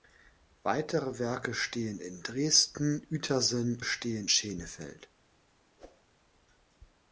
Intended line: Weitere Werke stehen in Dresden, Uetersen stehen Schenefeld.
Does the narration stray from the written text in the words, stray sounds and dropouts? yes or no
yes